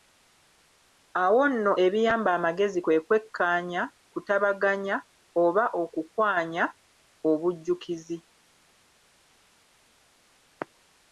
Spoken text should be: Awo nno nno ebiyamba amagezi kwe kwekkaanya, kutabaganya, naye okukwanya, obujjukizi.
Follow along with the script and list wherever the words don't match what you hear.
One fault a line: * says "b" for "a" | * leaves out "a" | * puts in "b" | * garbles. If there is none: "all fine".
* leaves out "nno"
* says "oba" for "naye"